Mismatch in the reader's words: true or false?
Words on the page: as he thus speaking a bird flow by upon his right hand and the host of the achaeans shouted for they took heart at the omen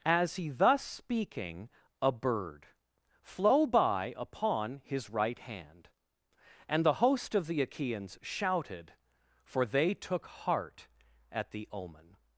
false